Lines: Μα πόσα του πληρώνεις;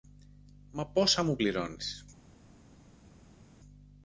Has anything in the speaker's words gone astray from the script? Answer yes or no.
yes